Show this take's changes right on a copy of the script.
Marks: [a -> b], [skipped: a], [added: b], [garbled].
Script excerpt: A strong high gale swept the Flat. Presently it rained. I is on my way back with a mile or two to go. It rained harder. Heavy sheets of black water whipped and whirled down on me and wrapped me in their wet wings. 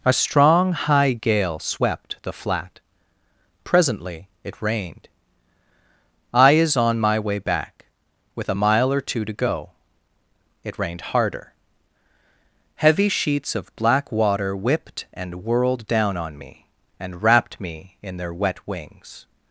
A strong high gale swept the Flat. Presently it rained. I is on my way back with a mile or two to go. It rained harder. Heavy sheets of black water whipped and whirled down on me and wrapped me in their wet wings.